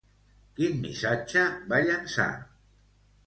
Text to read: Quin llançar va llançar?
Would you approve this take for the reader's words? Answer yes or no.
no